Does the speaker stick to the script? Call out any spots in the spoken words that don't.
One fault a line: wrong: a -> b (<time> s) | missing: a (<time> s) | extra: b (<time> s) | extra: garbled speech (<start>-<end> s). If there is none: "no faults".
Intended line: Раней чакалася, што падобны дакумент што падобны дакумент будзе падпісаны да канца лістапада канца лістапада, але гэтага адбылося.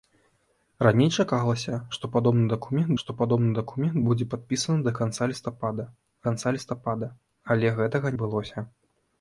no faults